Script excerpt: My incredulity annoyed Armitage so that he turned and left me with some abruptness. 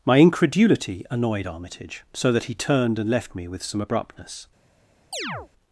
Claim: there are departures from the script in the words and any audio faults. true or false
true